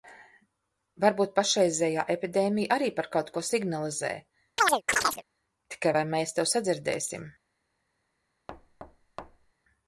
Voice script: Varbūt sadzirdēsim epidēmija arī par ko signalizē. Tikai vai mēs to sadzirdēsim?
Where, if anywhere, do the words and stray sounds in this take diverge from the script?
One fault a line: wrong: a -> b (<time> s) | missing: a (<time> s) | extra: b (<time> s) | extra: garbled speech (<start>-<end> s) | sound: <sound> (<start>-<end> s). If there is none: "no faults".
wrong: sadzirdēsim -> pašreizējā (1.4 s)
extra: kaut (3.1 s)
sound: chirp (4.6-5.2 s)
sound: thud (8.5-9.5 s)